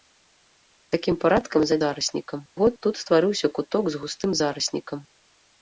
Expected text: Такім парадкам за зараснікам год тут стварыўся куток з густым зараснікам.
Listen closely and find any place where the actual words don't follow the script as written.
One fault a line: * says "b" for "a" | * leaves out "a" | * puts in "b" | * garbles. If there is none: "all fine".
all fine